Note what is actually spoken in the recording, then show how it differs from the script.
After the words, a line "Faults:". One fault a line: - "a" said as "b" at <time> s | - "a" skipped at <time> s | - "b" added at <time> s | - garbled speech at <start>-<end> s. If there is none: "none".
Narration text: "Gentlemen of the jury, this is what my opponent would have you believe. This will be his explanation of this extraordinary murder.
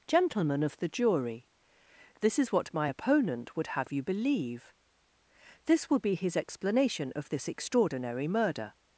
"Gentlemen of the jury, this is what my opponent would have you believe. This will be his explanation of this extraordinary murder.
Faults:
none